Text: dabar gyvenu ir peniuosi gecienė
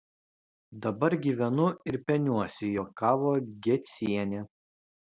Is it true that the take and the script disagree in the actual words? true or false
true